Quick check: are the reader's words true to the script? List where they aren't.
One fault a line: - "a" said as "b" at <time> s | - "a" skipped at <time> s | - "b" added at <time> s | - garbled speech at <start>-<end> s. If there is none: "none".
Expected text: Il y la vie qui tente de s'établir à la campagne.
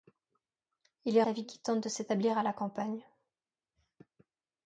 none